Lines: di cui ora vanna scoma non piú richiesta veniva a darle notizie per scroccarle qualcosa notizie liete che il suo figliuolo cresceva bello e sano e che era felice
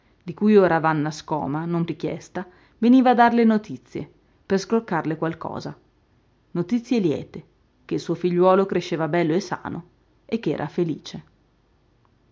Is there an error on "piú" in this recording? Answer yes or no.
yes